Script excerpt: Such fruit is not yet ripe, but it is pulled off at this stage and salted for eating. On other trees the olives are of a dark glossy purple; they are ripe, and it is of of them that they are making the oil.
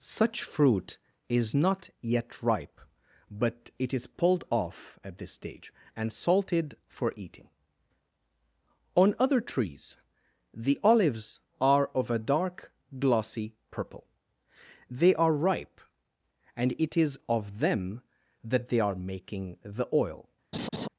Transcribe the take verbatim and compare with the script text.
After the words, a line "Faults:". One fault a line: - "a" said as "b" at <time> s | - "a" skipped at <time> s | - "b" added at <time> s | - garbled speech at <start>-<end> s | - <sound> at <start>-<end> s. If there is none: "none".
Such fruit is not yet ripe, but it is pulled off at this stage and salted for eating. On other trees the olives are of a dark glossy purple; they are ripe, and it is of them that they are making the oil.
Faults:
- "of" skipped at 17.6 s
- laugh at 20.5-20.9 s